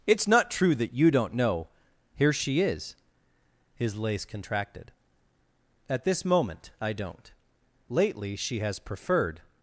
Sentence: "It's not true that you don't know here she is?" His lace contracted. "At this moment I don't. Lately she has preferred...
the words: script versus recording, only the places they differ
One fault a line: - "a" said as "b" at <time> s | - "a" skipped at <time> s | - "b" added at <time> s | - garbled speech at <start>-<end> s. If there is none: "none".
none